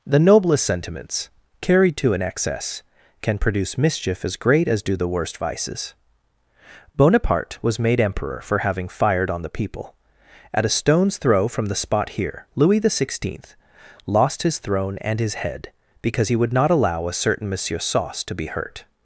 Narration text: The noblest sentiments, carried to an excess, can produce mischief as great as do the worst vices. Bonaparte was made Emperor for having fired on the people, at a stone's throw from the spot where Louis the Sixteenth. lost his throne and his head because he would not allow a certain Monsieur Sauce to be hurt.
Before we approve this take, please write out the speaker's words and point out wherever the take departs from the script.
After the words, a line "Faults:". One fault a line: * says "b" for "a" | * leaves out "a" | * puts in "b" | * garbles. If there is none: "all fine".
The noblest sentiments, carried to an excess, can produce mischief as great as do the worst vices. Bonaparte was made Emperor for having fired on the people, at a stone's throw from the spot here Louis the Sixteenth. lost his throne and his head because he would not allow a certain Monsieur Sauce to be hurt.
Faults:
* says "here" for "where"